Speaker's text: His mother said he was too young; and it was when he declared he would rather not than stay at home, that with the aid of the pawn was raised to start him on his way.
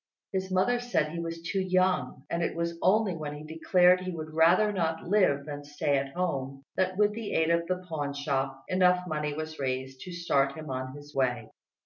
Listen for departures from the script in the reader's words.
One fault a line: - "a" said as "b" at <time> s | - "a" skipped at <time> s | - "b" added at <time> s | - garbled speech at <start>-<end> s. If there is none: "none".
- "only" added at 2.8 s
- "live" added at 5.0 s
- "shop enough money" added at 8.2 s